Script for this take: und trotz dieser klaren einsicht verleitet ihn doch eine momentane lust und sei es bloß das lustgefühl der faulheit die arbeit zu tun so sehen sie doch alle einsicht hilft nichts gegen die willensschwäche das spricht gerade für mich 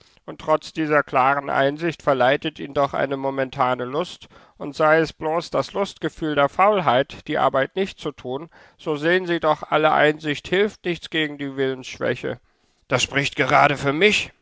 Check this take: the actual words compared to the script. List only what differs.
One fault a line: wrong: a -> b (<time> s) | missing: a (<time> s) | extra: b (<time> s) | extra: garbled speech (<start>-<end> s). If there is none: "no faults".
extra: nicht (7.8 s)